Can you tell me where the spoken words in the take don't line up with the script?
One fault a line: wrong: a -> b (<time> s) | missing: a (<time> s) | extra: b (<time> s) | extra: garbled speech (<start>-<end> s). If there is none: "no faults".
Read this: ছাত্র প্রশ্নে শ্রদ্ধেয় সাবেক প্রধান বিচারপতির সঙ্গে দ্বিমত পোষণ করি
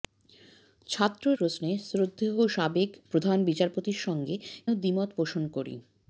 no faults